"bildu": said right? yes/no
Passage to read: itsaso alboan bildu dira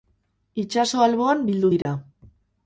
yes